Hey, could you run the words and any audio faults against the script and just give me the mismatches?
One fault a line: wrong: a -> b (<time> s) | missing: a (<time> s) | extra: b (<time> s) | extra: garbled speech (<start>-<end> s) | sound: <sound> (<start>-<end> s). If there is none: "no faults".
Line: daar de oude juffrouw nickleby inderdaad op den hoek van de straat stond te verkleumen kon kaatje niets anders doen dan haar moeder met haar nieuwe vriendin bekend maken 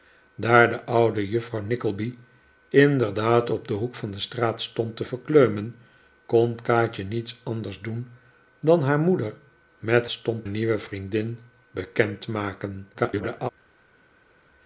wrong: haar -> stond (10.1 s)
extra: garbled speech (12.9-13.5 s)